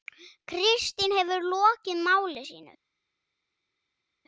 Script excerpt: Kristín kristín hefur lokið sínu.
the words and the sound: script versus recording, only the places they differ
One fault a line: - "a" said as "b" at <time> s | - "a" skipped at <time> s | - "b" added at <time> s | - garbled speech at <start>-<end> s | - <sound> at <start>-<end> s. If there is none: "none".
- "kristín" skipped at 1.1 s
- "máli" added at 2.1 s